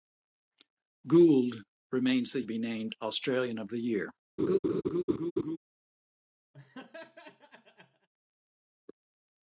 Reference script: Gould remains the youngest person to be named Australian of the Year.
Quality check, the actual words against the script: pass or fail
fail